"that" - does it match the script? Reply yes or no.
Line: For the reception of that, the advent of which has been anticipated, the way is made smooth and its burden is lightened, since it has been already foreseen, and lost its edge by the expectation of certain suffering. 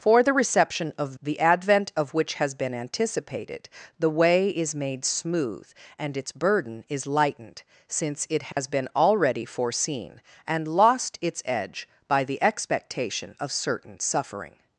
no